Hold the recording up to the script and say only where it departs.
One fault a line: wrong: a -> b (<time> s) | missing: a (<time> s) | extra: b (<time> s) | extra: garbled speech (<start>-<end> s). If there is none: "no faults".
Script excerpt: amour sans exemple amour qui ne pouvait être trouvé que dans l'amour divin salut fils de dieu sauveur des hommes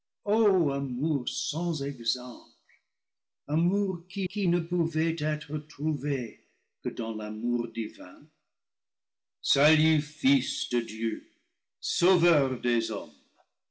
extra: qui (4.3 s)